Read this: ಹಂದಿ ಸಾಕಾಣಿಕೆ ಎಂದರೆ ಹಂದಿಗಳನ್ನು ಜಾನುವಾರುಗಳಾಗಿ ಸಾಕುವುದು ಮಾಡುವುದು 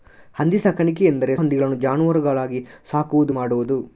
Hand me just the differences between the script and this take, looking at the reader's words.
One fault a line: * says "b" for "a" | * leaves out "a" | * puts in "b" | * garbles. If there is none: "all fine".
all fine